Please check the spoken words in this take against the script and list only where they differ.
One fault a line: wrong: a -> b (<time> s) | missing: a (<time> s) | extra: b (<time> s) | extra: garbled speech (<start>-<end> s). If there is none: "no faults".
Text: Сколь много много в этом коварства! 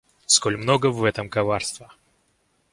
missing: много (0.9 s)